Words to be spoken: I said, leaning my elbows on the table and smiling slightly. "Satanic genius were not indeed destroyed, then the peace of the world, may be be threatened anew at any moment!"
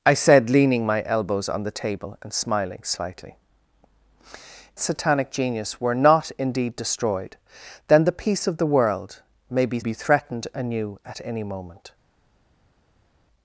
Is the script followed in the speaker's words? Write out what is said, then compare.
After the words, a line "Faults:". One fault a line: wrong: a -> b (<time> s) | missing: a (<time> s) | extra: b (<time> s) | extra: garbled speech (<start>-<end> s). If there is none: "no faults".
I said, leaning my elbows on the table and smiling slightly. "Satanic genius were not indeed destroyed, then the peace of the world, may be be threatened anew at any moment!"
Faults:
no faults